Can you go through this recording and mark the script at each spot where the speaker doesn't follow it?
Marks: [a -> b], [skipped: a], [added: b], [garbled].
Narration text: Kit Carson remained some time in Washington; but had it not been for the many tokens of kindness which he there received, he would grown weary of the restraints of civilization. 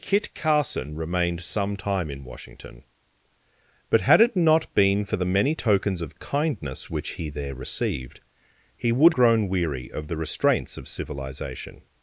Kit Carson remained some time in Washington; but had it not been for the many tokens of kindness which he there received, he would grown weary of the restraints of civilization.